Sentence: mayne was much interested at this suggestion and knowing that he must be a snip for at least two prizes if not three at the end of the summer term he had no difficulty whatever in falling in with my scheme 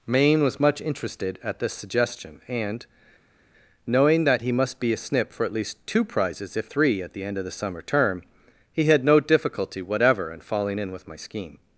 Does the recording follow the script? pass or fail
fail